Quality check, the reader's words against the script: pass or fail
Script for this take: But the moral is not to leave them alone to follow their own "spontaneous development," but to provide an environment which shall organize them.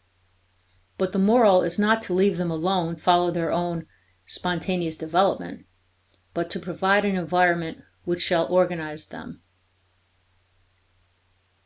fail